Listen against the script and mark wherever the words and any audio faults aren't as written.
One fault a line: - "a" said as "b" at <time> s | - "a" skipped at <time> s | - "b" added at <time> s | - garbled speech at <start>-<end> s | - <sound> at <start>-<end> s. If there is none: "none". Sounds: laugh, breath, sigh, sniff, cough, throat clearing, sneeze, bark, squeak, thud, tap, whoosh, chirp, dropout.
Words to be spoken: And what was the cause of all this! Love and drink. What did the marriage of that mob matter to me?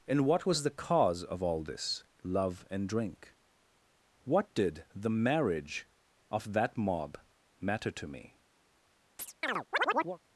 - chirp at 9.2-10.2 s